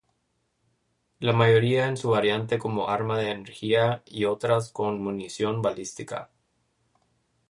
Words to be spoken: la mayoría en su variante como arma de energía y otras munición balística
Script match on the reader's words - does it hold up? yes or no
no